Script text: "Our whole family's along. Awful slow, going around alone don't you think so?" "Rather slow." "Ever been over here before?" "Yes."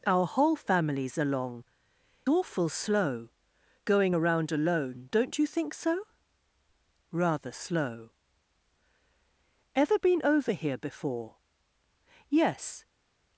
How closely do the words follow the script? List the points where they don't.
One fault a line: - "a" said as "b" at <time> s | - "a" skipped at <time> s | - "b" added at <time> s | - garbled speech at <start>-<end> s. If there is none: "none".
none